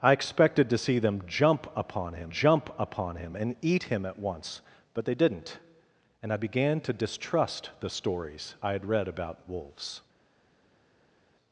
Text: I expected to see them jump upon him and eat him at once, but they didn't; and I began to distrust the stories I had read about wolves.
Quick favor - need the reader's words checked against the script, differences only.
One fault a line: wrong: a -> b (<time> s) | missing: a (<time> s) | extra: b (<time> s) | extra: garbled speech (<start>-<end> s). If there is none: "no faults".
extra: jump upon him (2.3 s)